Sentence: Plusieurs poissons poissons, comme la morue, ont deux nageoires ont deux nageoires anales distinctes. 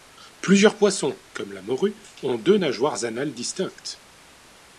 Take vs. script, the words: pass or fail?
fail